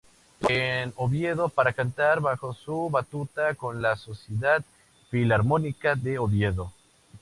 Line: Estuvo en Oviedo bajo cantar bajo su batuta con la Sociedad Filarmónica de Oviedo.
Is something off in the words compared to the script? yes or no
yes